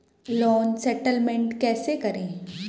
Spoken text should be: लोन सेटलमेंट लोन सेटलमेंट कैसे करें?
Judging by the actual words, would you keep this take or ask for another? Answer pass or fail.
fail